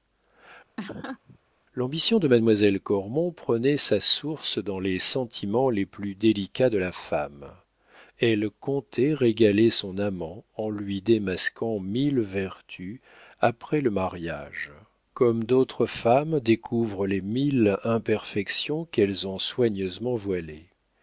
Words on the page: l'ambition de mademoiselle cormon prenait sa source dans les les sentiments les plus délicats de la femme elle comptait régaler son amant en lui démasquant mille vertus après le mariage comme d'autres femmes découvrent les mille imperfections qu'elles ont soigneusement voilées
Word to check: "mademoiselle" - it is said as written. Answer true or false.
true